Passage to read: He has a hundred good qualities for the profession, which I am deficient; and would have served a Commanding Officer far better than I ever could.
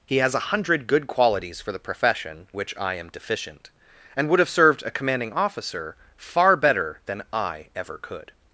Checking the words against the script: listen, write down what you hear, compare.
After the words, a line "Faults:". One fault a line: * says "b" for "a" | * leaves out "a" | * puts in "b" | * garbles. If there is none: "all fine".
He has a hundred good qualities for the profession, which I am deficient; and would have served a Commanding Officer far better than I ever could.
Faults:
all fine